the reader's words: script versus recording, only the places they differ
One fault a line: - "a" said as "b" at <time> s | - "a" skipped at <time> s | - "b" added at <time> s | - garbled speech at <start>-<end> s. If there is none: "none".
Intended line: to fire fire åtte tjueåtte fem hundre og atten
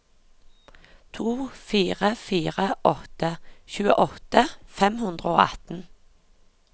none